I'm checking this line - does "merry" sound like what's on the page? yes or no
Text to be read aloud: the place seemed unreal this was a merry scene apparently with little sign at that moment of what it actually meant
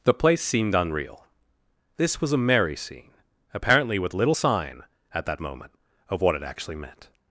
yes